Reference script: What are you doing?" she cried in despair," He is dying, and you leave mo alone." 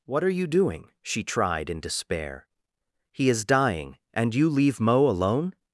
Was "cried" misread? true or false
true